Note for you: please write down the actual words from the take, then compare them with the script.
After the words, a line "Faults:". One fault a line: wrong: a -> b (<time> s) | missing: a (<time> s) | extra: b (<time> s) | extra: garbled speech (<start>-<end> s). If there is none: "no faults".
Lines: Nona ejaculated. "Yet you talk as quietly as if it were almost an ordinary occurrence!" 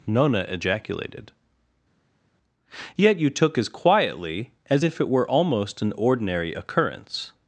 Nona ejaculated. "Yet you took as quietly as if it were almost an ordinary occurrence!"
Faults:
wrong: talk -> took (3.3 s)